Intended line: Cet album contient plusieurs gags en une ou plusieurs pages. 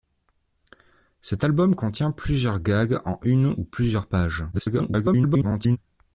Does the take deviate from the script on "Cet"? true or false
false